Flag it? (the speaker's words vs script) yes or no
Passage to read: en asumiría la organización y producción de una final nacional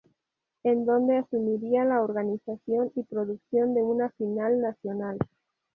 yes